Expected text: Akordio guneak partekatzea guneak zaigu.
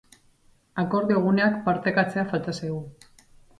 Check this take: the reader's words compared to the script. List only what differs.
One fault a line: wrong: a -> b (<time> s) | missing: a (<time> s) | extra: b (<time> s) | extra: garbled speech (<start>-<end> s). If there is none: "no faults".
wrong: guneak -> falta (2.4 s)